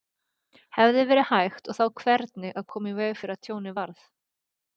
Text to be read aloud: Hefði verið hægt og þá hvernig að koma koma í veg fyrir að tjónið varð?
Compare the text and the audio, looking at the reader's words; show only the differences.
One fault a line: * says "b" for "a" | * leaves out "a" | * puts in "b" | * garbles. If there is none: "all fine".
* leaves out "koma"